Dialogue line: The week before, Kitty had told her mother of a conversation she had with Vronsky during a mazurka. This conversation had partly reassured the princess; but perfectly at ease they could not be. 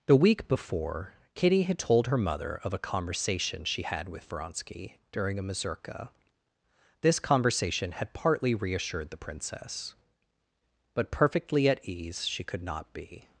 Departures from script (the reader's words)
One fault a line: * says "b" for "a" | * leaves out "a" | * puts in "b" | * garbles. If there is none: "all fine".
* says "she" for "they"